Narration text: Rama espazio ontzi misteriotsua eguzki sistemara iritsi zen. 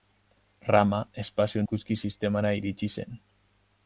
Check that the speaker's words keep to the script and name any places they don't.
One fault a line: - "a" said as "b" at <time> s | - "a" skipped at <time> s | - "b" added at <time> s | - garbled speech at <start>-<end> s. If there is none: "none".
- "ontzi misteriotsua" skipped at 1.6 s